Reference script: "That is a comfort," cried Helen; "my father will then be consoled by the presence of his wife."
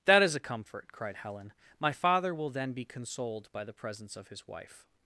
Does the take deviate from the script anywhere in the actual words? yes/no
no